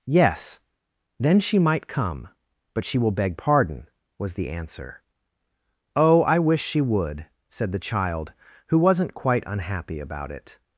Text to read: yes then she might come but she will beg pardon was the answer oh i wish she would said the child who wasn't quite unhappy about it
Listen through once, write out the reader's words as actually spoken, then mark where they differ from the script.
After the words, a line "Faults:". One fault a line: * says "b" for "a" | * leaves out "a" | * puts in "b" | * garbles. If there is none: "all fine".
yes then she might come but she will beg pardon was the answer oh i wish she would said the child who wasn't quite unhappy about it
Faults:
all fine